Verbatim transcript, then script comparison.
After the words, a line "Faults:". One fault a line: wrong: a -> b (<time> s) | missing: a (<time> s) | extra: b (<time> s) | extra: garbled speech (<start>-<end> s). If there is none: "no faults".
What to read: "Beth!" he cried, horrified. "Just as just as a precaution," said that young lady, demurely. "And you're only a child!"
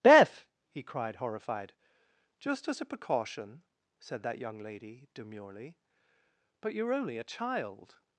"Beth!" he cried, horrified. "Just as a precaution," said that young lady, demurely. "But you're only a child!"
Faults:
missing: just as (2.8 s)
wrong: And -> But (6.6 s)